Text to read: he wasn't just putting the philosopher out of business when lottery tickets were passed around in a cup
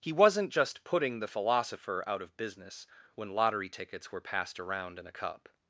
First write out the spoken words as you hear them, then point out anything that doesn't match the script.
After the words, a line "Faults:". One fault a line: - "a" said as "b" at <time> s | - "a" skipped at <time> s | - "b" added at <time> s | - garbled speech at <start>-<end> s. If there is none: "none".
he wasn't just putting the philosopher out of business when lottery tickets were passed around in a cup
Faults:
none